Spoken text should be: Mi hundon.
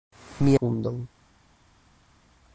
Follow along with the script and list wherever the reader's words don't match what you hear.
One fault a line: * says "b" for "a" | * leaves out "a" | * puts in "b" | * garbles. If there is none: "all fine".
all fine